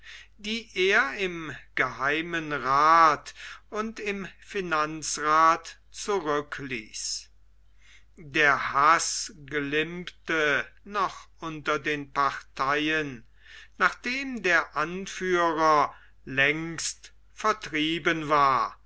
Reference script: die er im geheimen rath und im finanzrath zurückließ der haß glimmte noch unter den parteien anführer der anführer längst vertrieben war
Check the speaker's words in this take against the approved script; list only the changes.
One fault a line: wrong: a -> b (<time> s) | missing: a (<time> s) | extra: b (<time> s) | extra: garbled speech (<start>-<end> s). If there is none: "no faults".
wrong: anführer -> nachdem (13.8 s)